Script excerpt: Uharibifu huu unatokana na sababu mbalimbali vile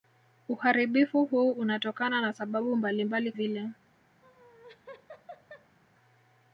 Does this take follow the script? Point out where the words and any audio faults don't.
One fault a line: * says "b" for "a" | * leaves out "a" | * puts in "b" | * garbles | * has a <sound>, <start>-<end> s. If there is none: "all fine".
* has a laugh, 4.2-5.8 s